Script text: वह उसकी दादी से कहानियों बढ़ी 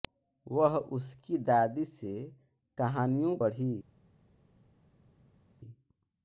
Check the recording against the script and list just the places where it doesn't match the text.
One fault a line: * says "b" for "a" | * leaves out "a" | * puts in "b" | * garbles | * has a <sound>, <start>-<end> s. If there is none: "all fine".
all fine